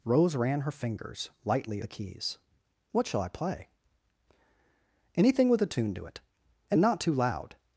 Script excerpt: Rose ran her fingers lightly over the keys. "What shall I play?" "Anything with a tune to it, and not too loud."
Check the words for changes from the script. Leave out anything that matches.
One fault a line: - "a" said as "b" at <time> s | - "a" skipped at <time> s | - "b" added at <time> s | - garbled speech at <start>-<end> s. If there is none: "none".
- "over" skipped at 1.8 s